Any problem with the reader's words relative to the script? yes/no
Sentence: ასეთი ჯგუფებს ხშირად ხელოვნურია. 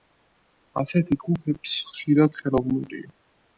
no